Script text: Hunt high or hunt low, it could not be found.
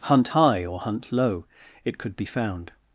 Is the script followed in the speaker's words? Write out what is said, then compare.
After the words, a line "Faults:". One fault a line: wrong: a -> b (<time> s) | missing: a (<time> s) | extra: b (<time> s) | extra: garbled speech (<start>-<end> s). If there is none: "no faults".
Hunt high or hunt low, it could be found.
Faults:
missing: not (2.2 s)